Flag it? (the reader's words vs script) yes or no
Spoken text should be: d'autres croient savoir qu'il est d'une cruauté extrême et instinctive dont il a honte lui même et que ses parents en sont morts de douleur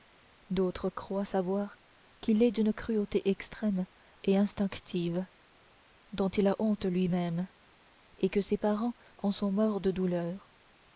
no